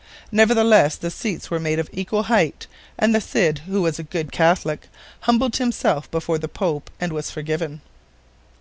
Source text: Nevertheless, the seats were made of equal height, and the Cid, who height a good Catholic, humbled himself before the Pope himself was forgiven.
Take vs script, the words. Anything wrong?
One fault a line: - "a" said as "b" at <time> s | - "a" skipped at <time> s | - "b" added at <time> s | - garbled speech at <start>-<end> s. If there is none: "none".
- "height" said as "was" at 3.8 s
- "himself" said as "and" at 7.0 s